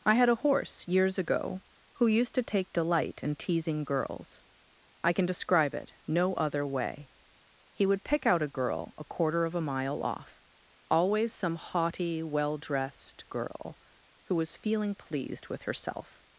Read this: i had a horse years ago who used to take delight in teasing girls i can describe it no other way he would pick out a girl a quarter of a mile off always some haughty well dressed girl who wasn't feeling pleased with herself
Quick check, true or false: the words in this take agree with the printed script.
false